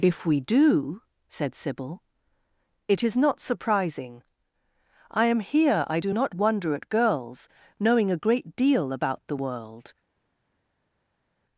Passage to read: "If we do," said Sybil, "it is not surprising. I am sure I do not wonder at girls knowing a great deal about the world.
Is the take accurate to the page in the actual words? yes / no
no